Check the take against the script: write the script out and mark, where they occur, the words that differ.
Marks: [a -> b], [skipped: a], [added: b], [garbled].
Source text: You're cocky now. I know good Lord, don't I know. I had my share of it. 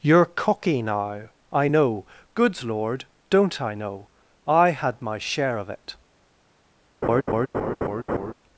You're cocky now. I know [good -> goods] Lord, don't I know. I had my share of it.